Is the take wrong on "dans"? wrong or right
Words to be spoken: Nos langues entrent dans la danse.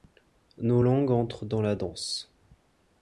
right